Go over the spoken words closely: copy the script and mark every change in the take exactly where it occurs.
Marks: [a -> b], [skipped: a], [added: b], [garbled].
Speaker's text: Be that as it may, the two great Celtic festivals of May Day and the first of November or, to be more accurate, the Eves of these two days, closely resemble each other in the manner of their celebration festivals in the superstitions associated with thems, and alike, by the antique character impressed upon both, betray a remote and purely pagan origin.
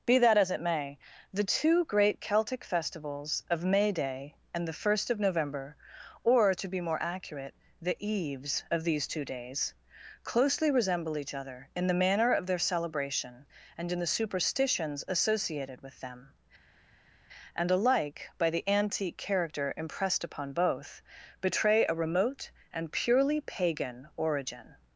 Be that as it may, the two great Celtic festivals of May Day and the first of November or, to be more accurate, the Eves of these two days, closely resemble each other in the manner of their celebration [festivals -> and] in the superstitions associated with [thems, -> them] and alike, by the antique character impressed upon both, betray a remote and purely pagan origin.